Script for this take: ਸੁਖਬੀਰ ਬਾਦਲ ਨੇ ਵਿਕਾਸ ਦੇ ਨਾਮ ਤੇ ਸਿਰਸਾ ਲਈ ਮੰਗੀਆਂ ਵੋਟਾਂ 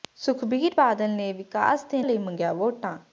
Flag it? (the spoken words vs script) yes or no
yes